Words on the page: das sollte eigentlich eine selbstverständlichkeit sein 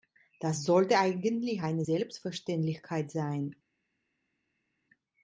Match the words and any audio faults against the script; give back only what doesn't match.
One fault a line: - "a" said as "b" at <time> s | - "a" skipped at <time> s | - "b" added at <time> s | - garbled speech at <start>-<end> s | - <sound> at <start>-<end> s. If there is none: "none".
none